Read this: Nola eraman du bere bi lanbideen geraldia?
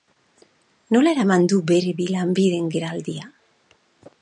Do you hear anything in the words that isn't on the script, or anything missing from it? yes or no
no